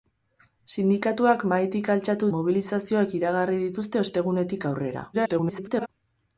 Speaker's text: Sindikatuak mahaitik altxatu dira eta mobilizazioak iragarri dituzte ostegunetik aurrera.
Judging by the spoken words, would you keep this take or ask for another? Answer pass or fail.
fail